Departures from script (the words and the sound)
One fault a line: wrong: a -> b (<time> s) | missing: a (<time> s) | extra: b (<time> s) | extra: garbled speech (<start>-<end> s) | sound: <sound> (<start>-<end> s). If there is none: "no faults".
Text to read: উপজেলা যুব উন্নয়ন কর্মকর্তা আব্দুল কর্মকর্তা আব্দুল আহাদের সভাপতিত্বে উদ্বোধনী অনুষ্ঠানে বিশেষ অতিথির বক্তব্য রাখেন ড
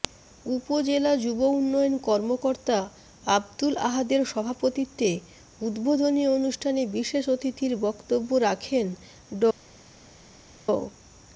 missing: কর্মকর্তা আব্দুল (3.7 s)